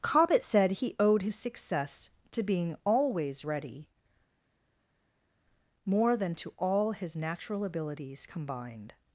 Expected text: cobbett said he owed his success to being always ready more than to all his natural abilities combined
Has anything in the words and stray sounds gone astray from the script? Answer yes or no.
no